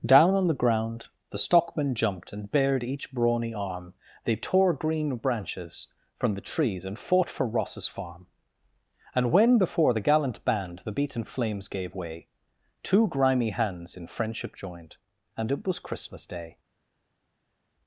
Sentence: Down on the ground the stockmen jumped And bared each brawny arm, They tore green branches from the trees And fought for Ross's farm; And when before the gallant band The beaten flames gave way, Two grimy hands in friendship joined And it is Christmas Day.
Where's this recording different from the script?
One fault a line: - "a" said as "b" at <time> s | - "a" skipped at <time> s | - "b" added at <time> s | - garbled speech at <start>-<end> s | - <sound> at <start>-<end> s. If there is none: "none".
- "is" said as "was" at 15.7 s